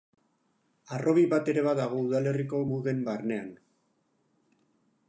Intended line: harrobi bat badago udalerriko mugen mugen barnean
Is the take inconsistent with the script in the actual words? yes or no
yes